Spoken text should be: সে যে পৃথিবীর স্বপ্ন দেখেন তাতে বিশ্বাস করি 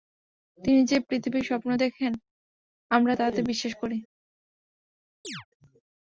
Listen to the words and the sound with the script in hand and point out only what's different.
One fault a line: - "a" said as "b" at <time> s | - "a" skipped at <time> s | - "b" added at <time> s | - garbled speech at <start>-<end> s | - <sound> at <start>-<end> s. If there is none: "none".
- "সে" said as "তিনি" at 0.6 s
- "আমরা" added at 2.9 s
- chirp at 5.2-5.5 s